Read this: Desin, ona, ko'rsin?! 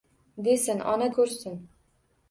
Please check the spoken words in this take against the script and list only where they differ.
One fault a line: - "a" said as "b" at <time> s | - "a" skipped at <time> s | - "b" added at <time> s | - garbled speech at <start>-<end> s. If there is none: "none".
none